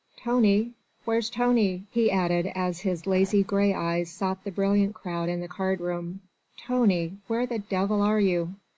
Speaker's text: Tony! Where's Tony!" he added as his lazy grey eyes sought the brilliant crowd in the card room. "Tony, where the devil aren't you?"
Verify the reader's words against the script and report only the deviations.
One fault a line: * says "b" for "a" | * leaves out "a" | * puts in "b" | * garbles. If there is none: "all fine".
* says "are" for "aren't"